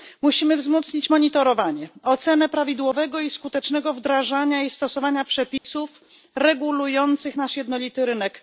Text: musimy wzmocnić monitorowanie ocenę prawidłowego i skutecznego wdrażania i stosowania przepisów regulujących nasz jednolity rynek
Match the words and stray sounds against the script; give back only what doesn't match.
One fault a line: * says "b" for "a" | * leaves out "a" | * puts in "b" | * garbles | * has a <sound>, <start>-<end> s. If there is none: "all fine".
* has a dropout, 5.6-5.6 s